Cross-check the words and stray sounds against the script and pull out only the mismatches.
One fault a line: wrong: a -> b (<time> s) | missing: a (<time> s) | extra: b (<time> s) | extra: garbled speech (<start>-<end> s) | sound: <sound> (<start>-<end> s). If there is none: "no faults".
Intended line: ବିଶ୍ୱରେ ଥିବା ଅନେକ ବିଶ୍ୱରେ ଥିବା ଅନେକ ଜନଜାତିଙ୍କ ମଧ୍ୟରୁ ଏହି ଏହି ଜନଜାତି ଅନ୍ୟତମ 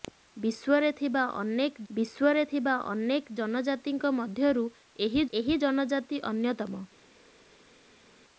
no faults